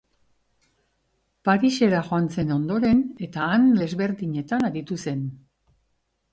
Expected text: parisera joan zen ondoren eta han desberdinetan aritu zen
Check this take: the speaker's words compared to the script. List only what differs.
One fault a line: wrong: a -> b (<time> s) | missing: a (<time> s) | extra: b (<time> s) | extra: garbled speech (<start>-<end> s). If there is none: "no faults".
no faults